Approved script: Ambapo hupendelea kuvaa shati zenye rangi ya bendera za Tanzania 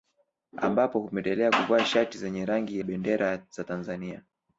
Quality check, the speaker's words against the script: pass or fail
fail